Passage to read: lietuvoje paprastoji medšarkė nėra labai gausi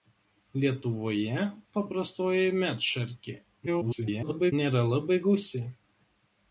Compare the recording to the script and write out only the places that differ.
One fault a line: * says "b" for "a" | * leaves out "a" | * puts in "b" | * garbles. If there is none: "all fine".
* garbles